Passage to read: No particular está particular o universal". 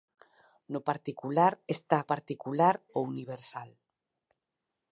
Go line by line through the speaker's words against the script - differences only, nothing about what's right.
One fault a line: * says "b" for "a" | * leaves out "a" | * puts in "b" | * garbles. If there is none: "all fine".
all fine